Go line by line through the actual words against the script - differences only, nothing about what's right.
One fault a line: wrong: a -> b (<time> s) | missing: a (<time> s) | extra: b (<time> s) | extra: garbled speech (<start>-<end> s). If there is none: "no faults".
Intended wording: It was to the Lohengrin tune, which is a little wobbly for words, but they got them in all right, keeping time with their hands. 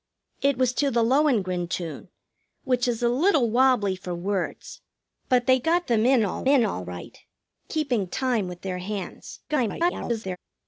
extra: in all (6.5 s)
extra: garbled speech (9.5-10.4 s)